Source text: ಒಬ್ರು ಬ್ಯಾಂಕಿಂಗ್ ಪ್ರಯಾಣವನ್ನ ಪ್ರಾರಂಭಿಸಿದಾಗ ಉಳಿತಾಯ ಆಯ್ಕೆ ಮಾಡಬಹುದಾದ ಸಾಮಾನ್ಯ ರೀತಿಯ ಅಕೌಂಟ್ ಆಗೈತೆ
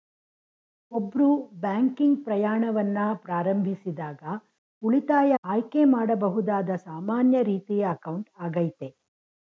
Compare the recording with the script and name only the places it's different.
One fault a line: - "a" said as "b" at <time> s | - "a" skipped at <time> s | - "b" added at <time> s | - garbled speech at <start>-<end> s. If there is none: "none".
none